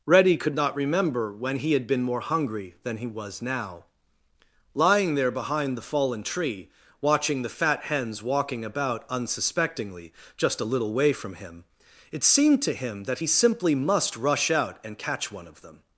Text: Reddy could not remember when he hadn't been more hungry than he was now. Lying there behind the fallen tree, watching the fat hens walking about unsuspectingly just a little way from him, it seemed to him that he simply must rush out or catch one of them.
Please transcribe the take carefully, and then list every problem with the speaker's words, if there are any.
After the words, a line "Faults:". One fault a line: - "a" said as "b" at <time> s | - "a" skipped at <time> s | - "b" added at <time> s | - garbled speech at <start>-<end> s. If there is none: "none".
Reddy could not remember when he had been more hungry than he was now. Lying there behind the fallen tree, watching the fat hens walking about unsuspectingly just a little way from him, it seemed to him that he simply must rush out and catch one of them.
Faults:
- "hadn't" said as "had" at 1.7 s
- "or" said as "and" at 14.8 s